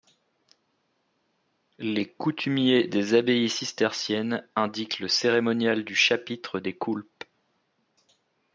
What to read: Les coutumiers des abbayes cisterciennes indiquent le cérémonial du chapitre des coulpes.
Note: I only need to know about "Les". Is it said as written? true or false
true